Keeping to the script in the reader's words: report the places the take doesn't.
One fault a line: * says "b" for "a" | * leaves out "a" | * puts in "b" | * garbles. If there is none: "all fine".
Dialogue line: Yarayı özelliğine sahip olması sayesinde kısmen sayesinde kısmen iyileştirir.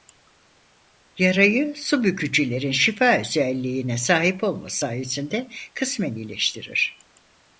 * puts in "su bükücülerin şifa"
* leaves out "sayesinde kısmen"